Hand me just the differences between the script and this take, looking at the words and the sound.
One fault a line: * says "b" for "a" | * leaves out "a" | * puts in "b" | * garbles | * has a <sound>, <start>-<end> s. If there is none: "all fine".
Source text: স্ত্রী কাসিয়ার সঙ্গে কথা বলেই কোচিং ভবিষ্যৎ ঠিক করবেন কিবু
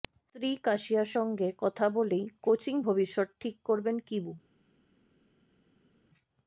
all fine